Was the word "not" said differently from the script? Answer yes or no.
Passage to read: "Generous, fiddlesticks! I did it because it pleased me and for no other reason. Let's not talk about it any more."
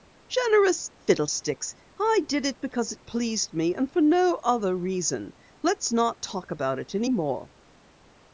no